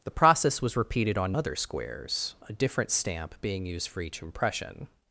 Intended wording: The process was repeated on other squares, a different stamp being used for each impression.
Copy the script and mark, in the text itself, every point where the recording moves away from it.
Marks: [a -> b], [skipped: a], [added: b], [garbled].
The process was repeated on other squares, a different stamp being used for each impression.